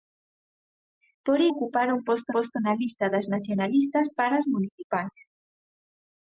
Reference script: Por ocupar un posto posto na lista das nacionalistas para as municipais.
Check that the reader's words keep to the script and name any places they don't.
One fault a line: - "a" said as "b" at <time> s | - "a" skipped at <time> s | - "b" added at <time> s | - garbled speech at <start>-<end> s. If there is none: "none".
none